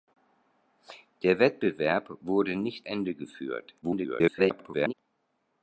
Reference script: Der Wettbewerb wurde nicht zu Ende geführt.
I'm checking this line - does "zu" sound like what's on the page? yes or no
no